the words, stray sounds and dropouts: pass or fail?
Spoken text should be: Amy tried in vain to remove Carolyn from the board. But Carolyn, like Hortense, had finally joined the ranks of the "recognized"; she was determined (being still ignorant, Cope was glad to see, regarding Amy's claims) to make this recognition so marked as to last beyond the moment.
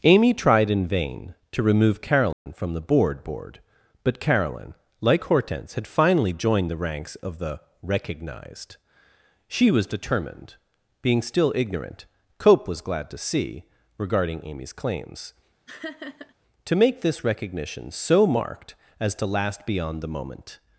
fail